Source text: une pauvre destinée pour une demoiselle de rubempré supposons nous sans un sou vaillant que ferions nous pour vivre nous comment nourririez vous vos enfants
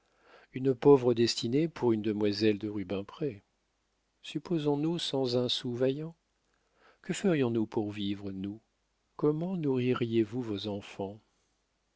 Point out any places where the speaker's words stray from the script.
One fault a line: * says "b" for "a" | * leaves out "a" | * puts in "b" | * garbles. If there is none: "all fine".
all fine